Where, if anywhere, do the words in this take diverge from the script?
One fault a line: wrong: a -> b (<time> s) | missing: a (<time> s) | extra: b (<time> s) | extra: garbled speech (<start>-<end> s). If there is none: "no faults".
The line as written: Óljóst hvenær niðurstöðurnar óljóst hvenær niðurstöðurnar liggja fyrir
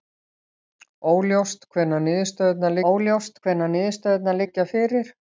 no faults